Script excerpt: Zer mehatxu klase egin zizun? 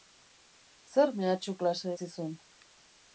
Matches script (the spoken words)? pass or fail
fail